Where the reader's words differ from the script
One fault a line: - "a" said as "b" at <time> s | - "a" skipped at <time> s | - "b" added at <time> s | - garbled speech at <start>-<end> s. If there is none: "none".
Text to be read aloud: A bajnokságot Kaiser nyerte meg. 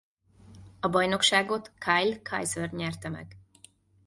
- "Kyle" added at 1.8 s